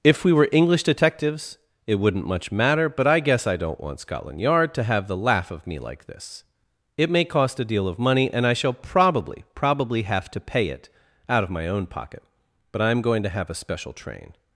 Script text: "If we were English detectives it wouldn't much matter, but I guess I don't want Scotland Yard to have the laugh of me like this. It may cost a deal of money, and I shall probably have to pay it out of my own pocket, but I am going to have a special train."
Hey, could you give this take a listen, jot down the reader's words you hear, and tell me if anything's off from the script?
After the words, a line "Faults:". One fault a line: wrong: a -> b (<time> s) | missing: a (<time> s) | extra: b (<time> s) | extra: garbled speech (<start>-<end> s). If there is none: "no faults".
"If we were English detectives it wouldn't much matter, but I guess I don't want Scotland Yard to have the laugh of me like this. It may cost a deal of money, and I shall probably probably have to pay it out of my own pocket, but I am going to have a special train."
Faults:
extra: probably (9.5 s)